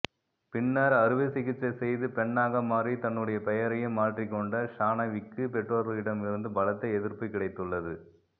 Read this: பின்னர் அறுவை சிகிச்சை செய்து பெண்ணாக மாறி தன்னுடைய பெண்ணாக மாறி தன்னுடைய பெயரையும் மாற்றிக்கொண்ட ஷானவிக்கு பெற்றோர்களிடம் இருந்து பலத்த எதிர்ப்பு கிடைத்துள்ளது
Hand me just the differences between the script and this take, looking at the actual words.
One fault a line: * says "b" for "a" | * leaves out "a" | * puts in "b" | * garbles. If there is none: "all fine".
* leaves out "பெண்ணாக மாறி தன்னுடைய"